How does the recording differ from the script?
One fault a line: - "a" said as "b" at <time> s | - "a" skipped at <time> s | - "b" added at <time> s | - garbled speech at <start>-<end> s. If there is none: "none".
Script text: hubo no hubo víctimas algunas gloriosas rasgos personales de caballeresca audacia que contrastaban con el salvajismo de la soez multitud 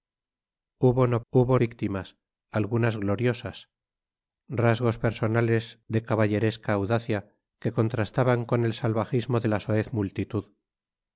none